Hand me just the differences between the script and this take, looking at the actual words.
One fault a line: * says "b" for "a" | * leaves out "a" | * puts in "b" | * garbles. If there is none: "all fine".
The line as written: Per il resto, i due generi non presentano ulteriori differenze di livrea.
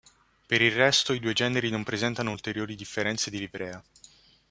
all fine